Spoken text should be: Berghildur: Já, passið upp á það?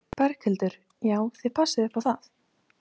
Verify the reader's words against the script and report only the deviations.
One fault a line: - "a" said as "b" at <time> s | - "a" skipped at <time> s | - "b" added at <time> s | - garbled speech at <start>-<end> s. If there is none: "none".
- "þið" added at 1.4 s